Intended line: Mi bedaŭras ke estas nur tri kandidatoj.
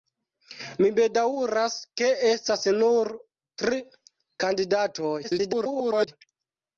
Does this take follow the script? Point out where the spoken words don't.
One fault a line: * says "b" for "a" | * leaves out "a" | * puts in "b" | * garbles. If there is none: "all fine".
* garbles